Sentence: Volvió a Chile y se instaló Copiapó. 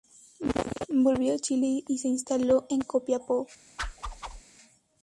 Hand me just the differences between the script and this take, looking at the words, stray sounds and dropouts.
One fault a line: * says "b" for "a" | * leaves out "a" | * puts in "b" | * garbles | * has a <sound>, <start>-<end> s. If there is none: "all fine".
* puts in "en"
* has a whoosh, 3.8-4.4 s